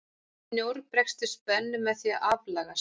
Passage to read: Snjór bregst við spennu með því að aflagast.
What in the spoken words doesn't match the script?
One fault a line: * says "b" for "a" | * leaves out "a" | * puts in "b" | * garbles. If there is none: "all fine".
all fine